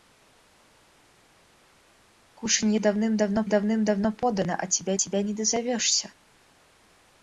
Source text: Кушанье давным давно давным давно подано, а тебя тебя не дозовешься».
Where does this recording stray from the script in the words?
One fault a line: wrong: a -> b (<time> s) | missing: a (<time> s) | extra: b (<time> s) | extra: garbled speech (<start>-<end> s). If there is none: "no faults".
no faults